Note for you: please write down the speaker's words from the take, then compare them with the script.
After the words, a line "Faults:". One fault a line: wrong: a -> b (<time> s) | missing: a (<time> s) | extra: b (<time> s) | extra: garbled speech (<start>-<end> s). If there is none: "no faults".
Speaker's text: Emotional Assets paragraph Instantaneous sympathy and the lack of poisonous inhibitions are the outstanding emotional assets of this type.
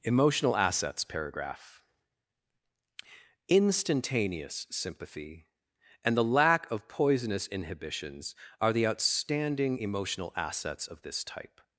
Emotional Assets paragraph Instantaneous sympathy and the lack of poisonous inhibitions are the outstanding emotional assets of this type.
Faults:
no faults